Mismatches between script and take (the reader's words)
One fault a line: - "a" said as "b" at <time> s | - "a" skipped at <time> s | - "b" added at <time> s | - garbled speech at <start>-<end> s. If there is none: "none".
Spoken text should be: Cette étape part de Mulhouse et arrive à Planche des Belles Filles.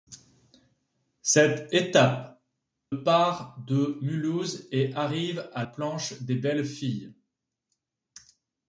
none